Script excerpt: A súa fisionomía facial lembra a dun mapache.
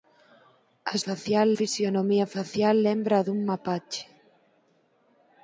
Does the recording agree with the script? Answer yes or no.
no